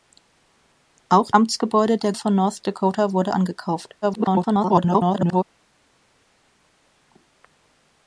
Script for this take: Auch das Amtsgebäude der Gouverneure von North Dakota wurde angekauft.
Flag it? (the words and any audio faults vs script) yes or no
yes